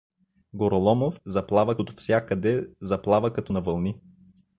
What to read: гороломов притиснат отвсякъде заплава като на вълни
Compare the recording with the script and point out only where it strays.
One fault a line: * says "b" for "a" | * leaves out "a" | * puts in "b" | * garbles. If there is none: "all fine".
* says "заплава" for "притиснат"